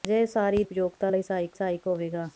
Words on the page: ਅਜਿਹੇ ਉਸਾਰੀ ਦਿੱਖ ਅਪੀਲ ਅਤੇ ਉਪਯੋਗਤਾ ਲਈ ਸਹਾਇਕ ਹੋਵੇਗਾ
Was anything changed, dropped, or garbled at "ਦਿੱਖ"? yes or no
yes